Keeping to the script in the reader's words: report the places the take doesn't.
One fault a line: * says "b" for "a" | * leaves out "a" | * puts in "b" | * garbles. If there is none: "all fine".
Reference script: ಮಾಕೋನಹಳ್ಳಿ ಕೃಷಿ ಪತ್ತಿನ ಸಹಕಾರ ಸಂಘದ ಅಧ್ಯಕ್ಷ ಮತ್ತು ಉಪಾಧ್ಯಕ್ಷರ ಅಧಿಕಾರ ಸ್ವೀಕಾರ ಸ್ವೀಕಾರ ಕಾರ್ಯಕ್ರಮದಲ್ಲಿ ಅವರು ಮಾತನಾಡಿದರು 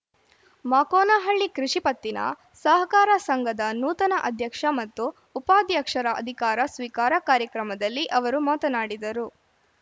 * puts in "ನೂತನ"
* leaves out "ಸ್ವೀಕಾರ"